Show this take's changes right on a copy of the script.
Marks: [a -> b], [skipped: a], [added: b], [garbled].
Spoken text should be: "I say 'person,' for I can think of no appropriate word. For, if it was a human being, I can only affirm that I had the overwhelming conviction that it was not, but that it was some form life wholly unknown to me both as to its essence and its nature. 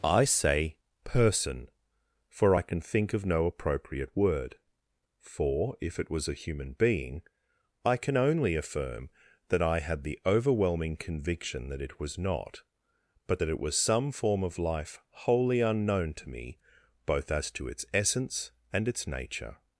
"I say 'person,' for I can think of no appropriate word. For, if it was a human being, I can only affirm that I had the overwhelming conviction that it was not, but that it was some form [added: of] life wholly unknown to me both as to its essence and its nature.